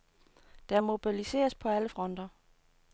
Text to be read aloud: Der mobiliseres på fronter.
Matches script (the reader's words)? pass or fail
fail